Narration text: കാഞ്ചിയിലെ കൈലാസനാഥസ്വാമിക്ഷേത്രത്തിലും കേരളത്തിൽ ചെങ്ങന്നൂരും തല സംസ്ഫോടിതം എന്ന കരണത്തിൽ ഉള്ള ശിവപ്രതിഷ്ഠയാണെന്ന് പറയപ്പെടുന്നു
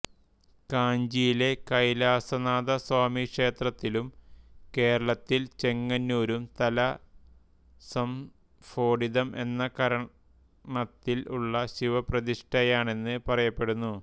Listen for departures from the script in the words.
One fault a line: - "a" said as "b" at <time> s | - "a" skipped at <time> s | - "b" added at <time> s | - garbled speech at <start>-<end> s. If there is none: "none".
none